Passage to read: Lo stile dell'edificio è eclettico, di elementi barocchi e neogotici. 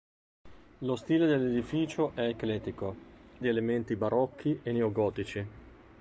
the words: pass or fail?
pass